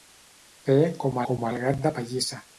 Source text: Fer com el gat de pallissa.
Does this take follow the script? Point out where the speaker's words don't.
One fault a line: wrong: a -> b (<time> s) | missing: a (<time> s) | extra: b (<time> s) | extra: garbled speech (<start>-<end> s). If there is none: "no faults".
extra: com (1.3 s)